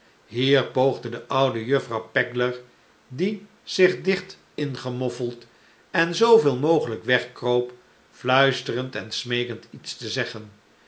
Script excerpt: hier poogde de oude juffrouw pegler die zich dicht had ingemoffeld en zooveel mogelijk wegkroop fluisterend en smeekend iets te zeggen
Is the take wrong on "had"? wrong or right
wrong